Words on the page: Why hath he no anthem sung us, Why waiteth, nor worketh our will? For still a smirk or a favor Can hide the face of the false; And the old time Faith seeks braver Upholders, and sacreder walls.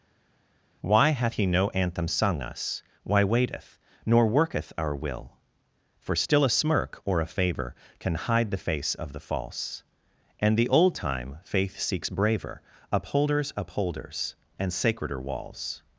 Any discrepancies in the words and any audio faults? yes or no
yes